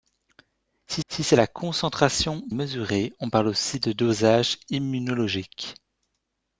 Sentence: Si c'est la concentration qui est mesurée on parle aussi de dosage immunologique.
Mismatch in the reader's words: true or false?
true